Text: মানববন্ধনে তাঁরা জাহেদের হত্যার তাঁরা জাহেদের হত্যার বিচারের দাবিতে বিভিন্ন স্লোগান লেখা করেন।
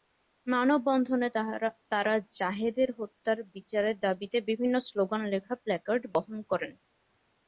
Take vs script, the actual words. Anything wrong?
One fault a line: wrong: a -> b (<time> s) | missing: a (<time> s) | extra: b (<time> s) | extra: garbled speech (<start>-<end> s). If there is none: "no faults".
missing: তাঁরা জাহেদের হত্যার (3.4 s)
extra: প্ল্যাকার্ড বহন (5.5 s)